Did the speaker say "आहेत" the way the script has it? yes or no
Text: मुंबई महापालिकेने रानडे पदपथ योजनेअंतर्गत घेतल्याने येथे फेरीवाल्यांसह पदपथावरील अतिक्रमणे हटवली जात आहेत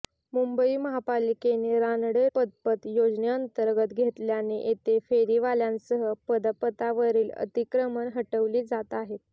yes